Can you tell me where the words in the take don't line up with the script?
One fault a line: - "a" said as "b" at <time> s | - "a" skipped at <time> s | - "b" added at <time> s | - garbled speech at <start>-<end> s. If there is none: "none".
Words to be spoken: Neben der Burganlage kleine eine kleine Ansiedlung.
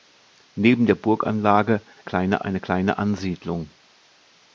none